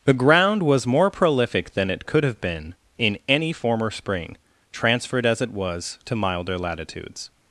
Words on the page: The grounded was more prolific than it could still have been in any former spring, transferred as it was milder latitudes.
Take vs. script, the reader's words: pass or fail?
fail